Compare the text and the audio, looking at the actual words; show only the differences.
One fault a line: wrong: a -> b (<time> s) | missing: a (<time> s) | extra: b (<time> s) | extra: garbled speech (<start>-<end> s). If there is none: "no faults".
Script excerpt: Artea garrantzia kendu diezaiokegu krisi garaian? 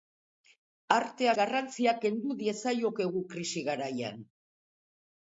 no faults